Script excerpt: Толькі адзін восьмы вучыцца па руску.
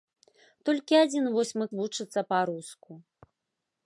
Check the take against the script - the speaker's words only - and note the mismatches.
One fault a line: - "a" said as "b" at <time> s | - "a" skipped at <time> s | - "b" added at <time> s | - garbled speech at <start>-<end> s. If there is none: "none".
none